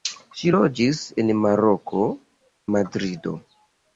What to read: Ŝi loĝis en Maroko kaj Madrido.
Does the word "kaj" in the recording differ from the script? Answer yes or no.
yes